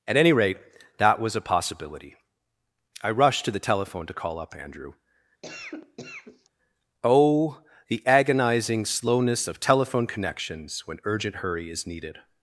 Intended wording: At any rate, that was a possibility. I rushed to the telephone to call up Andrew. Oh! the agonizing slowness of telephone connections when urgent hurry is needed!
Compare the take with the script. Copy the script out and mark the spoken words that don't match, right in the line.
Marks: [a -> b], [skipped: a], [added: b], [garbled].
At any rate, that was a possibility. I rushed to the telephone to call up Andrew. Oh! the agonizing slowness of telephone connections when urgent hurry is needed!